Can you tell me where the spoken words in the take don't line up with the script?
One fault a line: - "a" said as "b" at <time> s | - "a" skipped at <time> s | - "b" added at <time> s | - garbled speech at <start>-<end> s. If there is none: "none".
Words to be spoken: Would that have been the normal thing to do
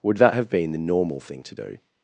none